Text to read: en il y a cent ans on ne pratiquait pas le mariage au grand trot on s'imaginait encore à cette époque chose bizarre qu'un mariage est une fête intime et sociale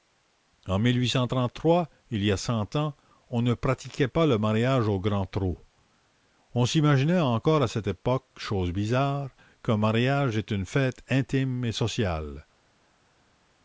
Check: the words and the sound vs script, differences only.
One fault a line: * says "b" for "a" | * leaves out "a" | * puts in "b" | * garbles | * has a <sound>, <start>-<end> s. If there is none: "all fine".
all fine